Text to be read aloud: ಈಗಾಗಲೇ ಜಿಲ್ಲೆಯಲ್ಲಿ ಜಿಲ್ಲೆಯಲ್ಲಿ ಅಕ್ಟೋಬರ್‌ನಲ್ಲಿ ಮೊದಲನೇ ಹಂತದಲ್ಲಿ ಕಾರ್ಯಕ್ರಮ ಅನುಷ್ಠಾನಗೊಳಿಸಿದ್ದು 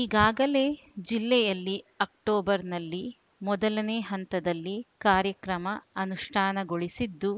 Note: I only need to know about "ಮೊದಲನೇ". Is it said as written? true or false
true